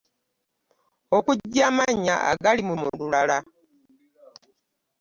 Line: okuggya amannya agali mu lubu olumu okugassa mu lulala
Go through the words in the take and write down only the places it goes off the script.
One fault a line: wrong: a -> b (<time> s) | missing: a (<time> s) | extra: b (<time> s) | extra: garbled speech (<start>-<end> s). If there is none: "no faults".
missing: lubu olumu okugassa (2.7 s)